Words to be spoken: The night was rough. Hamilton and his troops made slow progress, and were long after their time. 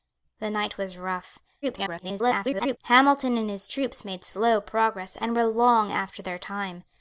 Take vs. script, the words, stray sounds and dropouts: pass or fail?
fail